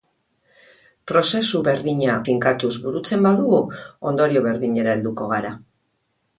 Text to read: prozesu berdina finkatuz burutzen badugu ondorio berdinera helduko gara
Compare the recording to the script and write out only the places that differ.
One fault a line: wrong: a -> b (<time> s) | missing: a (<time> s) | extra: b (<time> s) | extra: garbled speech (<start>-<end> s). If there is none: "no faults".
no faults